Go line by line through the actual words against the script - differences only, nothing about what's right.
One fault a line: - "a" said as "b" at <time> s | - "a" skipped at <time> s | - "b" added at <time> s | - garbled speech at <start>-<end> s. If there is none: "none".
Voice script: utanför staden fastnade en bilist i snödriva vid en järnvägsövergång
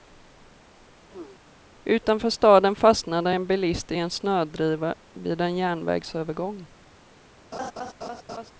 - "en" added at 3.9 s